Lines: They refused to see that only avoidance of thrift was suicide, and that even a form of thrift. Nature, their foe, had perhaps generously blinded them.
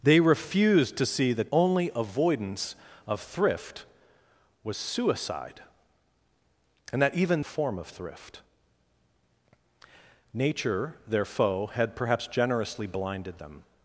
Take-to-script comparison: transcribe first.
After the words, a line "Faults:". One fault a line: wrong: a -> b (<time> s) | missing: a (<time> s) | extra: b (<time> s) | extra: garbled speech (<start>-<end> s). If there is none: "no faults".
They refused to see that only avoidance of thrift was suicide, and that even a form of thrift. Nature, their foe, had perhaps generously blinded them.
Faults:
no faults